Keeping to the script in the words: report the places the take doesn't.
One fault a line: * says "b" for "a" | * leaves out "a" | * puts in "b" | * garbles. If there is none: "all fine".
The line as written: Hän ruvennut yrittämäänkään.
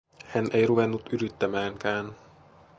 * puts in "ei"